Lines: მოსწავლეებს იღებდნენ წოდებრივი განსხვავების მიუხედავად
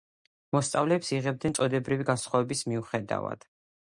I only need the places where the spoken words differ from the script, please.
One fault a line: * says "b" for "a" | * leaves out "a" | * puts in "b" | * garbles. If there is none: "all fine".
all fine